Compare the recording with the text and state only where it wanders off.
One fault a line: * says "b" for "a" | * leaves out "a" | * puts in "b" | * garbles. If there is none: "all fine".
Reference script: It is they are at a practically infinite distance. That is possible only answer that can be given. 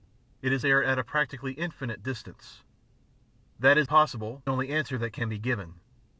all fine